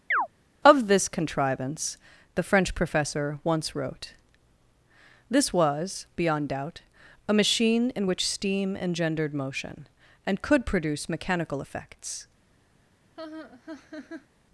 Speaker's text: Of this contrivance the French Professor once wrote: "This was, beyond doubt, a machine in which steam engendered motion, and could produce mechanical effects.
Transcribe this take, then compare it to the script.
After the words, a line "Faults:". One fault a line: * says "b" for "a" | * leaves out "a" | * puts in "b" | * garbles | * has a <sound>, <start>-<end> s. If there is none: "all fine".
Of this contrivance the French Professor once wrote: "This was, beyond doubt, a machine in which steam engendered motion, and could produce mechanical effects.
Faults:
* has a chirp, 0.1-0.3 s
* has a laugh, 13.2-14.3 s